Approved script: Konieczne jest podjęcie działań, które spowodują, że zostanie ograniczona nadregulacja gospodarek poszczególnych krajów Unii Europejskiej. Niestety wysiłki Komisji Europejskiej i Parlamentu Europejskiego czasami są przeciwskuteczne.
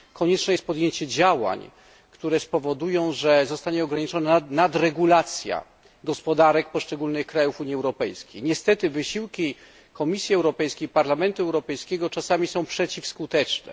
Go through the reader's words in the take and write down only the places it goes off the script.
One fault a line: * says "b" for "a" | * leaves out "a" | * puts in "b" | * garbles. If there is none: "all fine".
all fine